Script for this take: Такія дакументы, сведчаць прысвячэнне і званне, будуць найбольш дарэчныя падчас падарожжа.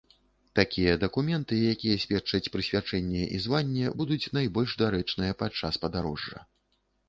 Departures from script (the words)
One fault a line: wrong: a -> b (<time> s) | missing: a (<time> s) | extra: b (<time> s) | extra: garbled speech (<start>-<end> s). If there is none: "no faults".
extra: якія (1.7 s)